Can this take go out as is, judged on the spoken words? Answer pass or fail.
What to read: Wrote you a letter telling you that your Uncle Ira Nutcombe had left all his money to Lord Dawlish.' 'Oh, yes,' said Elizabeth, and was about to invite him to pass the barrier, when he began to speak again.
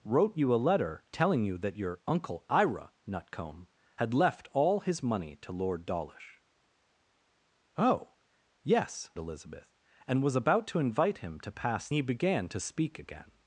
fail